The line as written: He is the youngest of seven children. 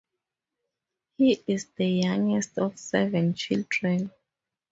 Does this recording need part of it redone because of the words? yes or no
no